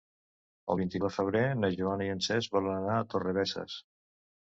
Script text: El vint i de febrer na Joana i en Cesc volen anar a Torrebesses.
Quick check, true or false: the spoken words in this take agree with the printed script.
true